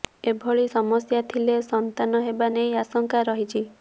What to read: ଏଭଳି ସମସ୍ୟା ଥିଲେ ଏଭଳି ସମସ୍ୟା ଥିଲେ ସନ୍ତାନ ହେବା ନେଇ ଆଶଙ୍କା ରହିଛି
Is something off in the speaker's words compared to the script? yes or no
yes